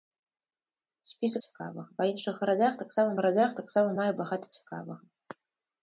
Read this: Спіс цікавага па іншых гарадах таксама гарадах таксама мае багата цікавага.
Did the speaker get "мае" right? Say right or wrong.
right